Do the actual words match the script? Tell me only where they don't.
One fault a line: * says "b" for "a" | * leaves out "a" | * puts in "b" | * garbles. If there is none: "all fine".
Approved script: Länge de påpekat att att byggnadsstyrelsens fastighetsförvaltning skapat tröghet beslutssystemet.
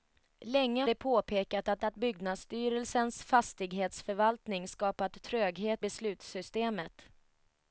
all fine